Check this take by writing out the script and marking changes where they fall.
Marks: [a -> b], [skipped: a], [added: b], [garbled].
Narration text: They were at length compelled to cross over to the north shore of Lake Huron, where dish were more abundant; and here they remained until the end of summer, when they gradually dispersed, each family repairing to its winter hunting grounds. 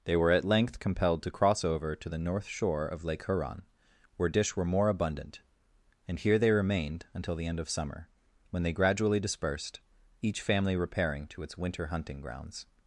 They were at length compelled to cross over to the north shore of Lake Huron, where dish were more abundant; and here they remained until the end of summer, when they gradually dispersed, each family repairing to its winter hunting grounds.